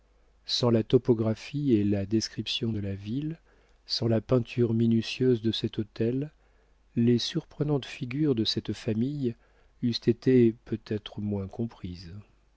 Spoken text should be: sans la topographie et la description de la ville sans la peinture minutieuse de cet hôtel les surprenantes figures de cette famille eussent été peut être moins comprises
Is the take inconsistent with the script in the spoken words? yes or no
no